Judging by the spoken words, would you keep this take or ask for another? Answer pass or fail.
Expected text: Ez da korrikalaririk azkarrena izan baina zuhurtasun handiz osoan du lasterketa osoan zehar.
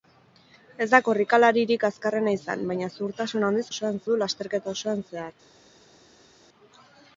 pass